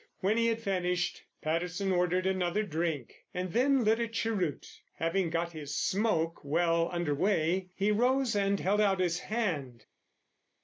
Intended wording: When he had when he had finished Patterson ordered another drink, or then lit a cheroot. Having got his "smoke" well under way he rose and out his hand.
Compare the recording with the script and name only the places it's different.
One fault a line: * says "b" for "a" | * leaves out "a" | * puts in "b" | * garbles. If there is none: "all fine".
* leaves out "when he had"
* says "and" for "or"
* puts in "held"